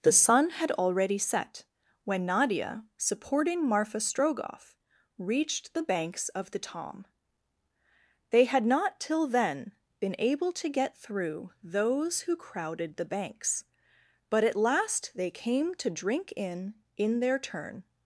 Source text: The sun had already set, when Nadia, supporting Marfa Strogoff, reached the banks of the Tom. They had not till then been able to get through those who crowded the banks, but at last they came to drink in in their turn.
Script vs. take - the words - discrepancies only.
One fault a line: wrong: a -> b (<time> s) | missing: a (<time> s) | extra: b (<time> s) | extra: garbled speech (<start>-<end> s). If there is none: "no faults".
no faults